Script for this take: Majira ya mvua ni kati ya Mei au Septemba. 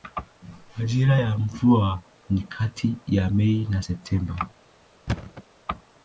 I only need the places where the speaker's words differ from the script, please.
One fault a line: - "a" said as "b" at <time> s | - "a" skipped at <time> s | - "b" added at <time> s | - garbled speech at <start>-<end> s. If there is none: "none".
- "au" said as "na" at 3.7 s